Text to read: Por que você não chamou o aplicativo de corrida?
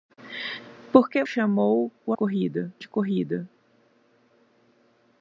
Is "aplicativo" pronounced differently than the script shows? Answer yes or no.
yes